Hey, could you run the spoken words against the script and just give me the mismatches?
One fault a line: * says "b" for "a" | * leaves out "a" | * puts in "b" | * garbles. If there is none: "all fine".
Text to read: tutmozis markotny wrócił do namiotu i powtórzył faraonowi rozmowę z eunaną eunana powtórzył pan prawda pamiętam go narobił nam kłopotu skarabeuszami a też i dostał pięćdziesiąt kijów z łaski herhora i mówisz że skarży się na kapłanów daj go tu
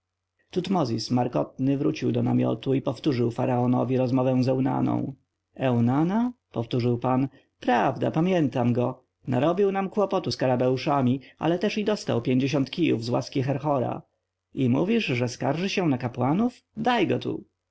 * says "ale" for "a"